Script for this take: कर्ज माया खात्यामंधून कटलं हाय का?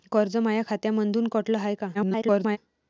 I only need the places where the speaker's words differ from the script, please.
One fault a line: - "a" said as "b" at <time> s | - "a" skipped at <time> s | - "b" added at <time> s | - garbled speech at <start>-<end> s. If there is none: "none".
- garbled speech at 1.9-2.6 s